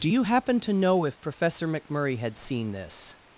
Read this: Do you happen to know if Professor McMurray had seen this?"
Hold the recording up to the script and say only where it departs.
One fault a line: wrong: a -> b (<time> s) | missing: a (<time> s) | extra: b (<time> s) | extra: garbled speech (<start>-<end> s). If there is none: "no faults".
no faults